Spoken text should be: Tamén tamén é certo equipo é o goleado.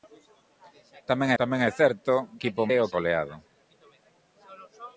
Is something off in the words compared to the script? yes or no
no